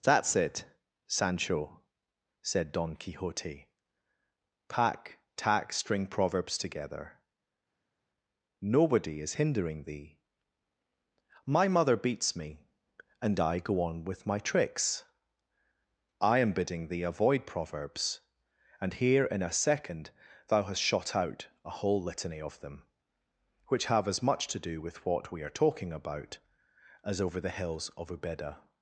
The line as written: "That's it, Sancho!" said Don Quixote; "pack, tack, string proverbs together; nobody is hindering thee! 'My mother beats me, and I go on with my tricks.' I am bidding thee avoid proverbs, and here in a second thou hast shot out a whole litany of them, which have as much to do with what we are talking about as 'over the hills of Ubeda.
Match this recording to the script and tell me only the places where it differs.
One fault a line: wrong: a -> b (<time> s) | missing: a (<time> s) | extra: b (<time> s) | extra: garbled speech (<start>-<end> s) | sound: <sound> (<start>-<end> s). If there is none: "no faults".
no faults